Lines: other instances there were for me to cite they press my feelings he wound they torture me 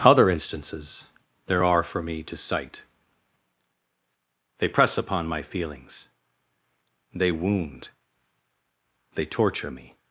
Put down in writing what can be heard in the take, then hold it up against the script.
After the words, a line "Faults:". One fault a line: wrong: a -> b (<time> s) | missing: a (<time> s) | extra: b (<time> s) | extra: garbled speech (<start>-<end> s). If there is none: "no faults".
other instances there are for me to cite they press upon my feelings they wound they torture me
Faults:
wrong: were -> are (1.6 s)
extra: upon (4.9 s)
wrong: he -> they (7.1 s)